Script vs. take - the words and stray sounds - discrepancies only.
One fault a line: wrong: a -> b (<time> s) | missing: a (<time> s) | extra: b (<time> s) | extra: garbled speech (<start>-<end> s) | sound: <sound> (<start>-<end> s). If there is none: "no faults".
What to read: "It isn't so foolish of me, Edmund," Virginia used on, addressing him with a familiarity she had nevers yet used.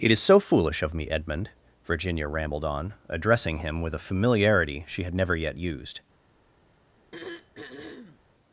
wrong: isn't -> is (0.1 s)
wrong: used -> rambled (2.3 s)
wrong: nevers -> never (5.1 s)
sound: throat clearing (7.1-8.2 s)